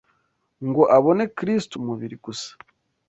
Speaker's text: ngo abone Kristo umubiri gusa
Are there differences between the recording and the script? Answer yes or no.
no